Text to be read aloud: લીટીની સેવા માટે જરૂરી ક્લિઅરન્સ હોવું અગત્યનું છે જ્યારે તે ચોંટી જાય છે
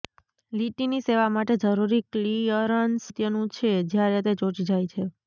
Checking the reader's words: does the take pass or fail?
fail